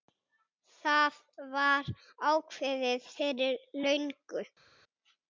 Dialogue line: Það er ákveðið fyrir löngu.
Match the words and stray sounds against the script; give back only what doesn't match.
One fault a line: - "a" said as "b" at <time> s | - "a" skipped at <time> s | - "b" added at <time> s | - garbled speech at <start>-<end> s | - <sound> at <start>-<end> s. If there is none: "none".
- "er" said as "var" at 1.5 s